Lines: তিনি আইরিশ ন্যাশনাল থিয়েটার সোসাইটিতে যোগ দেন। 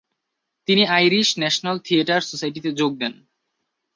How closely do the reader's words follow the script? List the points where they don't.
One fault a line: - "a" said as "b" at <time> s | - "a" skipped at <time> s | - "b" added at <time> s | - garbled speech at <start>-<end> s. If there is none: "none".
none